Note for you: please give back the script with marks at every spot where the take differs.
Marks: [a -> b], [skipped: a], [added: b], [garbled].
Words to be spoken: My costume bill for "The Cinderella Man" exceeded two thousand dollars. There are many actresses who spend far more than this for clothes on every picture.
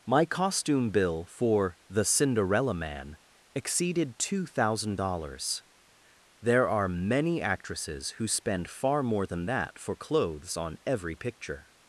My costume bill for "The Cinderella Man" exceeded two thousand dollars. There are many actresses who spend far more than [this -> that] for clothes on every picture.